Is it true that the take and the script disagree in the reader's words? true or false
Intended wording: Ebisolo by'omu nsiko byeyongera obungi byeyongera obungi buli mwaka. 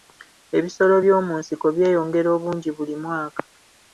true